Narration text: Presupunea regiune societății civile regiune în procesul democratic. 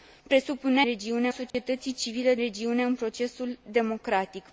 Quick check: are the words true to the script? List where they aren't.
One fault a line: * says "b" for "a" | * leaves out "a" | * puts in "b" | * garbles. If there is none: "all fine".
all fine